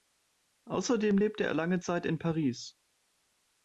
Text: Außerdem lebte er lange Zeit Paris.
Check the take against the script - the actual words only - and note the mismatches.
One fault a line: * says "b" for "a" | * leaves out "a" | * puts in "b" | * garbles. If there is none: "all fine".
* puts in "in"